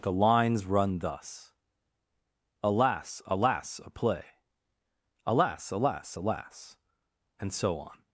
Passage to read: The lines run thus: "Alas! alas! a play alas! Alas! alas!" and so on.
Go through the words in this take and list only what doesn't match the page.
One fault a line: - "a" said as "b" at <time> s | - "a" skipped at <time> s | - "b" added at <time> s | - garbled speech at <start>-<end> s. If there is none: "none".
none